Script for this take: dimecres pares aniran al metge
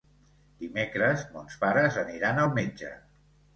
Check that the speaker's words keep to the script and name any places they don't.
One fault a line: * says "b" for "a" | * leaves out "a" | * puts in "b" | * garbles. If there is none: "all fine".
* puts in "mons"